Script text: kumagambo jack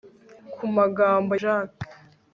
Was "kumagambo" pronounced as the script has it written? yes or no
yes